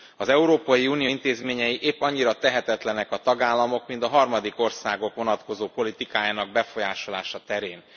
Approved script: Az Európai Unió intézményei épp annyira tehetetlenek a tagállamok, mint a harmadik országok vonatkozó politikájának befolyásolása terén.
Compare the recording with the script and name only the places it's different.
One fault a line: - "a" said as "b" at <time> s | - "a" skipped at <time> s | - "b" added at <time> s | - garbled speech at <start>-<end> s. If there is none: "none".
none